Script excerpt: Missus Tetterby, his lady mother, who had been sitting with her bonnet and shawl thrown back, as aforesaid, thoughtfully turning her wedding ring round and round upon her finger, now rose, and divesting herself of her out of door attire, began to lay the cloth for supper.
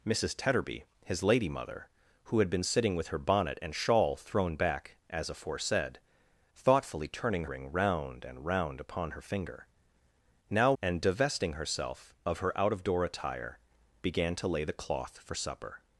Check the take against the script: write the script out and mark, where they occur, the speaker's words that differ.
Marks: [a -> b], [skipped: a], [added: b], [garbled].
Missus Tetterby, his lady mother, who had been sitting with her bonnet and shawl thrown back, as aforesaid, thoughtfully turning [skipped: her wedding] ring round and round upon her finger, now [skipped: rose,] and divesting herself of her out of door attire, began to lay the cloth for supper.